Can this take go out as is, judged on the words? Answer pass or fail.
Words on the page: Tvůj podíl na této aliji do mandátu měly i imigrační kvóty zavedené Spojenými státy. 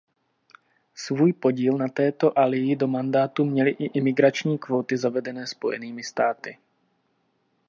fail